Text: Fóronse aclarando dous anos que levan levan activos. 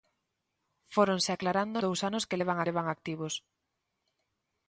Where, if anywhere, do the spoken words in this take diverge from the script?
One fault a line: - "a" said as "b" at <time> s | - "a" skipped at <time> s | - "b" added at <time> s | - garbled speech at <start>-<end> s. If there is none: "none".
none